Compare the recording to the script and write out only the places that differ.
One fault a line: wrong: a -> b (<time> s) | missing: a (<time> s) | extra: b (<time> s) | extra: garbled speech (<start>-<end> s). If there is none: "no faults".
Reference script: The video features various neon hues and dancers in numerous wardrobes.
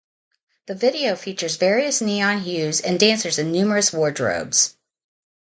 no faults